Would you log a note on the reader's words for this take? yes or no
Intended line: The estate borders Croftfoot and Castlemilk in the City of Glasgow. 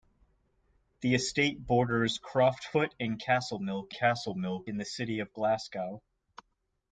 yes